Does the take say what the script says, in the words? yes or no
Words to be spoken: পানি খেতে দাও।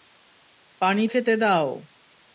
yes